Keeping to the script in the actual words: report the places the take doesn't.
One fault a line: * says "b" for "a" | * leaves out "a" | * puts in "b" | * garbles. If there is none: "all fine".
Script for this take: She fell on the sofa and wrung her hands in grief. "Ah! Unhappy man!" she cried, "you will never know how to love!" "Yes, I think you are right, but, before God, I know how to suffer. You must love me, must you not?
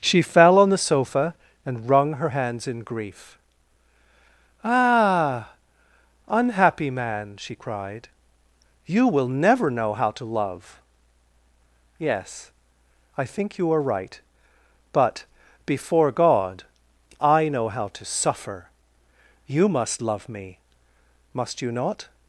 all fine